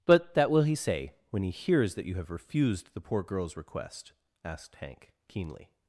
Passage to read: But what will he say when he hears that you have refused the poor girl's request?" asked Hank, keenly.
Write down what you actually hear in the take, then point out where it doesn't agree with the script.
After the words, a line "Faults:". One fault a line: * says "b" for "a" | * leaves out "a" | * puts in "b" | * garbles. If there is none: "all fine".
But that will he say when he hears that you have refused the poor girl's request?" asked Hank, keenly.
Faults:
* says "that" for "what"